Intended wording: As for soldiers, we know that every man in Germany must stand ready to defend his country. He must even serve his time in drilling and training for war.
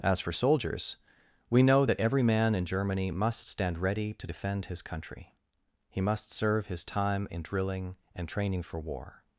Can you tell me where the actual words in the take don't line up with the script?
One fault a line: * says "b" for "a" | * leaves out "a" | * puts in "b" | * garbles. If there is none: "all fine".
* leaves out "even"